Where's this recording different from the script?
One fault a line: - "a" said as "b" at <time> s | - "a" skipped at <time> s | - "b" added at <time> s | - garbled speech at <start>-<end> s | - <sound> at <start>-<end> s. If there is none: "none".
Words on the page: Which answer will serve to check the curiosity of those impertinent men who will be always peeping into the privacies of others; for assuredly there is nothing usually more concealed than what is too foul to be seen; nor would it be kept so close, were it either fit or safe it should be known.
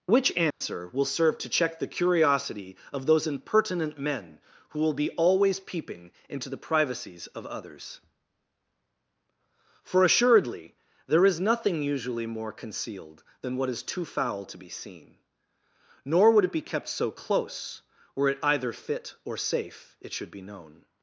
- dropout at 0.5-0.6 s